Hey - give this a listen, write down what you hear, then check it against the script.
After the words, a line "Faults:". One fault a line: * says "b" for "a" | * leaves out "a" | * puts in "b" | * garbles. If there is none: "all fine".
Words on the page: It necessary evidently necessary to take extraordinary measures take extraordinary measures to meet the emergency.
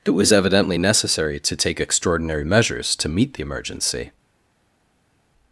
It was evidently necessary to take extraordinary measures to meet the emergency.
Faults:
* says "was" for "necessary"
* leaves out "take extraordinary measures"